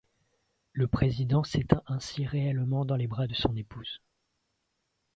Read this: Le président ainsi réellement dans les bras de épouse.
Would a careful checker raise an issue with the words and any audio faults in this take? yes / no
yes